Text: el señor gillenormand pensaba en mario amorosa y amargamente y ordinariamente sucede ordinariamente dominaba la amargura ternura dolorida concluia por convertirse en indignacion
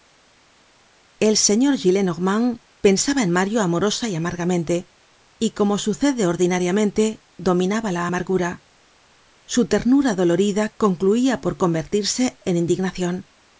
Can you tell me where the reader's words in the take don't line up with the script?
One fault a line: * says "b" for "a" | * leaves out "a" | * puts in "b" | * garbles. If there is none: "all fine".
* says "como" for "ordinariamente"
* puts in "su"